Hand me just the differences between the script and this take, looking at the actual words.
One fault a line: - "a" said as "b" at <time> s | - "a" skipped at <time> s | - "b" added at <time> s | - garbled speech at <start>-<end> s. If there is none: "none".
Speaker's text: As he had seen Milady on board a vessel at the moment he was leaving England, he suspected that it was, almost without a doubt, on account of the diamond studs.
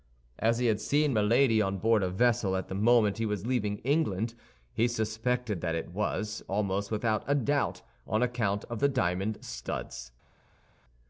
none